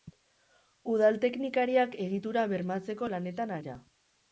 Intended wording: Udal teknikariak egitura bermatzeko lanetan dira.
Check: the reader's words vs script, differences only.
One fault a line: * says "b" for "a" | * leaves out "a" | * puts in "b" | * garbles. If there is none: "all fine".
all fine